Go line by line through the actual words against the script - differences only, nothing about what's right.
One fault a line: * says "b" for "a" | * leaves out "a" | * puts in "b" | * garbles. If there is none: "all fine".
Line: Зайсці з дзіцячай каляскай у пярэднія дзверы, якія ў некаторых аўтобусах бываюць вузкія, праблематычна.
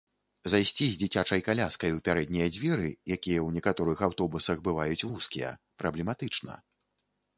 all fine